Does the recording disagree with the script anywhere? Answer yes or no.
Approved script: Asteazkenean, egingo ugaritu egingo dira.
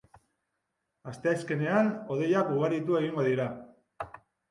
yes